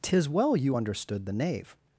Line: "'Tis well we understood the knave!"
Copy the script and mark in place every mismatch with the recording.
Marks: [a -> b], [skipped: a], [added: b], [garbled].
"'Tis well [we -> you] understood the knave!"